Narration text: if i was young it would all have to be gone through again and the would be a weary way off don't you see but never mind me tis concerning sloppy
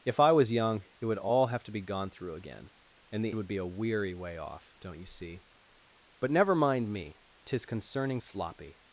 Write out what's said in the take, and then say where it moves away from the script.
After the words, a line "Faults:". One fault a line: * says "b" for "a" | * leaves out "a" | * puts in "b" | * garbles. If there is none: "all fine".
if i was young it would all have to be gone through again and the would be a weary way off don't you see but never mind me tis concerning sloppy
Faults:
all fine